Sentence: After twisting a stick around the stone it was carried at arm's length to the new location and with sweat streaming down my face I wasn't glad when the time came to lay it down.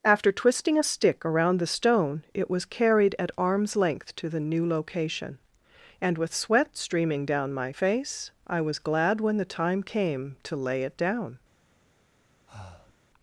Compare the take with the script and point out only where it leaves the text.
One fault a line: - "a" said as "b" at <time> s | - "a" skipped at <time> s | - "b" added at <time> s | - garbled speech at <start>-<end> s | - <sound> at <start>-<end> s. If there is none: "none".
- "wasn't" said as "was" at 8.6 s
- breath at 12.5-13.0 s